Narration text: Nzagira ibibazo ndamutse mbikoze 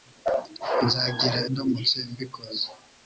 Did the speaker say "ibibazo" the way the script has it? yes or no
no